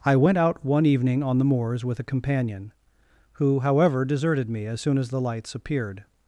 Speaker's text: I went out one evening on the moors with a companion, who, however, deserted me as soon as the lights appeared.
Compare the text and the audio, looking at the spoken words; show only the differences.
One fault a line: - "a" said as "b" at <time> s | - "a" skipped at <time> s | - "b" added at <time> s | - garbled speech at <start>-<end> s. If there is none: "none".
none